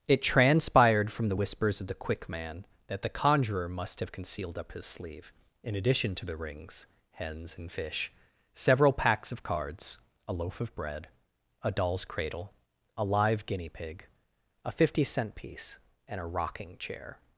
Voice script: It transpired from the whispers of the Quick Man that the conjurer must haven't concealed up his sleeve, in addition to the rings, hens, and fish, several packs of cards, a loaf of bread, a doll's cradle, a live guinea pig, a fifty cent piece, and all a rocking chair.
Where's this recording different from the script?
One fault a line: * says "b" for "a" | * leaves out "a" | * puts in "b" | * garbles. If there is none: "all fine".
* says "have" for "haven't"
* leaves out "all"